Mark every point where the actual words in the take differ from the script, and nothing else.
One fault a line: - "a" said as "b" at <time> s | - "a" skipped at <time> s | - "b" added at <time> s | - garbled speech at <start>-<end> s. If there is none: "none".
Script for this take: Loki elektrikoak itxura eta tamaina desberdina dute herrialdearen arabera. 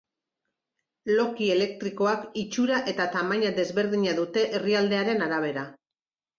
none